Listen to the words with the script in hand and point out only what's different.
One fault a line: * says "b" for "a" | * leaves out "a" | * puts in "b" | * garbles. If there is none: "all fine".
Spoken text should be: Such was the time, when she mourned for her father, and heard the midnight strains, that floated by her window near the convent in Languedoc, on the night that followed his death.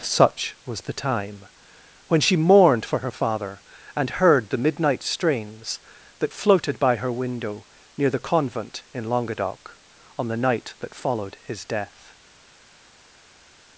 all fine